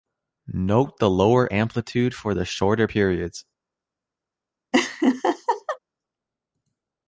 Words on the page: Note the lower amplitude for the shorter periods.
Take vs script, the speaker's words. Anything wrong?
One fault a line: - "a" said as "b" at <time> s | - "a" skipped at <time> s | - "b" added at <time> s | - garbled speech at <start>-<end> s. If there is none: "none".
none